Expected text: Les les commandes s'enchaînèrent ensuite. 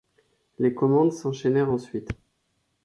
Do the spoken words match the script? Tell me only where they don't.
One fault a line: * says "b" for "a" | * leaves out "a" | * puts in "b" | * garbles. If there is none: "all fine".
* leaves out "les"